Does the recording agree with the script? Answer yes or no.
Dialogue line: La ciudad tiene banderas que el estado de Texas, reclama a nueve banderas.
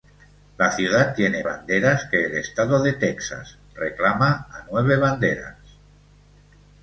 yes